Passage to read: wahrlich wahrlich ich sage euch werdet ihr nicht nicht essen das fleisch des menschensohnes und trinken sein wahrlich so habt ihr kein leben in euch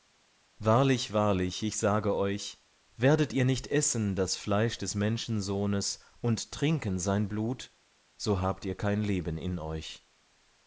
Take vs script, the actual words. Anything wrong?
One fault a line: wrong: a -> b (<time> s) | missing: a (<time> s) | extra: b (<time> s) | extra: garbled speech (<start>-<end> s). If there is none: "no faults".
missing: nicht (3.7 s)
wrong: wahrlich -> blut (7.3 s)